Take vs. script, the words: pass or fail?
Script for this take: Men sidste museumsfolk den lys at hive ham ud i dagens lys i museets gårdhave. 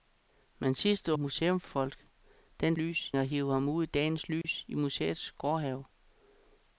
pass